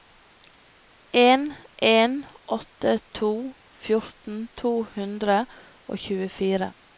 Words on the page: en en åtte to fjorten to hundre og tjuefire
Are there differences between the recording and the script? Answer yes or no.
no